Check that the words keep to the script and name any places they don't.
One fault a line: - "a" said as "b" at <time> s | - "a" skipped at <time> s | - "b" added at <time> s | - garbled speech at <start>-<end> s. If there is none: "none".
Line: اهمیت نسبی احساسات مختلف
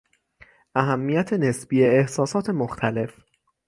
none